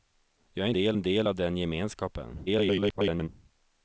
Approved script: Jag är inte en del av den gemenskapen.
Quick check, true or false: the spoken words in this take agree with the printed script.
false